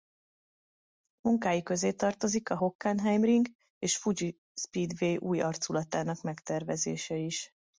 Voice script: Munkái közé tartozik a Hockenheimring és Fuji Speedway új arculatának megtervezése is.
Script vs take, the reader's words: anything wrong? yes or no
no